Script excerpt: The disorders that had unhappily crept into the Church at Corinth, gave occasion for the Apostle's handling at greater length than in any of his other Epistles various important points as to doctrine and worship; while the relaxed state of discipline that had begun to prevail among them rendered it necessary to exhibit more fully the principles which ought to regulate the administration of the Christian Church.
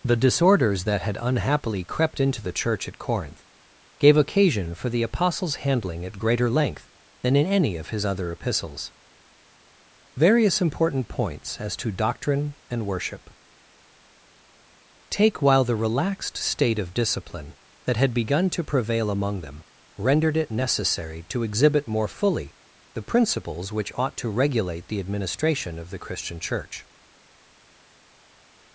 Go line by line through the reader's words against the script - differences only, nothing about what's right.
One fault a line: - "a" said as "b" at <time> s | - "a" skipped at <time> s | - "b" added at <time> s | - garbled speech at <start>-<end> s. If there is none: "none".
- "take" added at 15.1 s